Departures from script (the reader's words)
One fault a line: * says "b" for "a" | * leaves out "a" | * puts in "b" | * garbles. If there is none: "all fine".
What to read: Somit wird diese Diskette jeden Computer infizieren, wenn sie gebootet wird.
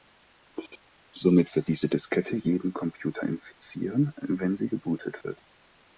all fine